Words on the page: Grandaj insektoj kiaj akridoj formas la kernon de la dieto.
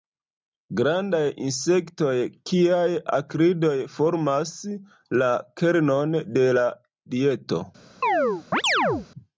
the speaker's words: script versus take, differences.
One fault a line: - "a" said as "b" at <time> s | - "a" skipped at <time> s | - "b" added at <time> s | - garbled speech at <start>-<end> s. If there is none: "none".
none